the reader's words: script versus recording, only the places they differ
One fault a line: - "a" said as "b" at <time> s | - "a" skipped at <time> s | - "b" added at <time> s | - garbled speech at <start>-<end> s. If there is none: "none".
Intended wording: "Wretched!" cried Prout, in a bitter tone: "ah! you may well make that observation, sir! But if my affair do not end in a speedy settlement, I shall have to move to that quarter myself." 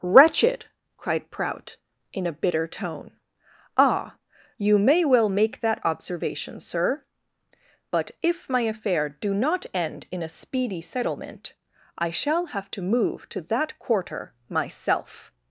none